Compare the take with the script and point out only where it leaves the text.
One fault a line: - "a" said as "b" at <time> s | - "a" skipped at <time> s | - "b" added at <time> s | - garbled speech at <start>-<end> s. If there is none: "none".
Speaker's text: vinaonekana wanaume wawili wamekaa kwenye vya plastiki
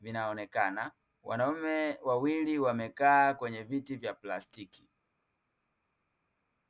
- "viti" added at 3.6 s